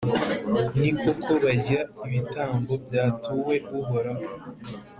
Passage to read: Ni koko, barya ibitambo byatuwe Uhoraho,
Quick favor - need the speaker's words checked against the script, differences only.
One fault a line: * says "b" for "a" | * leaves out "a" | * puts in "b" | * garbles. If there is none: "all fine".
all fine